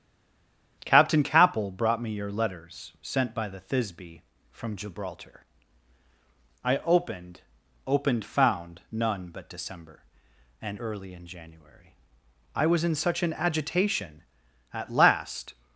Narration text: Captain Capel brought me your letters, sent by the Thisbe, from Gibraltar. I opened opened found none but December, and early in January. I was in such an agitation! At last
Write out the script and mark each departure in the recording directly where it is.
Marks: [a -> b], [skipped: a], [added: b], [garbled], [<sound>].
Captain Capel brought me your letters, sent by the Thisbe, from Gibraltar. I opened opened found none but December, and early in January. I was in such an agitation! At last